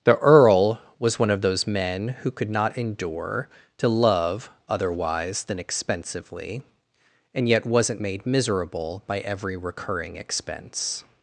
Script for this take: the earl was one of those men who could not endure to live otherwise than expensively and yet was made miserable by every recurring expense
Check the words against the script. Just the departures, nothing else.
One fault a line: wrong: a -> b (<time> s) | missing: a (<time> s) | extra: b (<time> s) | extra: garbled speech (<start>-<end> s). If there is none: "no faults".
wrong: live -> love (3.9 s)
wrong: was -> wasn't (7.6 s)